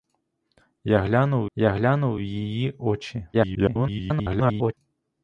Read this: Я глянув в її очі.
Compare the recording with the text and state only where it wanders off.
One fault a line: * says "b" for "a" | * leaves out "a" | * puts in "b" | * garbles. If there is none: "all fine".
* puts in "я глянув"
* garbles